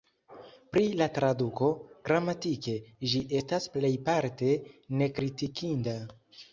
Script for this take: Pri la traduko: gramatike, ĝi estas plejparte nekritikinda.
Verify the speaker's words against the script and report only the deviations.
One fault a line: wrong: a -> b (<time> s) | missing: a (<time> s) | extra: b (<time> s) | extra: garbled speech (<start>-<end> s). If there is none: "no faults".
no faults